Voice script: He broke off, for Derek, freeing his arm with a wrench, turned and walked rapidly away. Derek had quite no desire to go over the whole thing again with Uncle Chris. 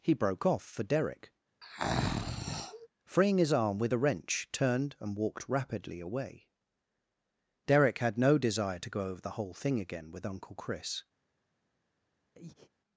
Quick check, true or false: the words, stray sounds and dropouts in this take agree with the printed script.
false